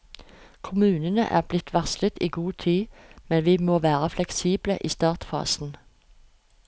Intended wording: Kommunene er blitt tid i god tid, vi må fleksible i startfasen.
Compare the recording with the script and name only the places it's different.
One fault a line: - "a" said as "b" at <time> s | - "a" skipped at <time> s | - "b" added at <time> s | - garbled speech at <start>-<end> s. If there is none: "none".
- "tid" said as "varslet" at 1.7 s
- "men" added at 3.3 s
- "være" added at 3.8 s